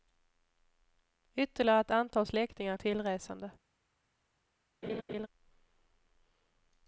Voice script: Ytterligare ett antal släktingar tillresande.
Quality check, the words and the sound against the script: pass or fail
fail